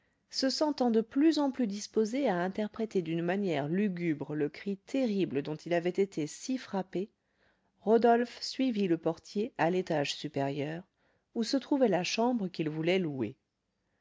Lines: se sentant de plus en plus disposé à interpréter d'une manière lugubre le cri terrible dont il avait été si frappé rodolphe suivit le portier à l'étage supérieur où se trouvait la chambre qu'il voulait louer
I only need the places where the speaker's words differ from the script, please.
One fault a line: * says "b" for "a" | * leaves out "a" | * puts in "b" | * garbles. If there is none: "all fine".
all fine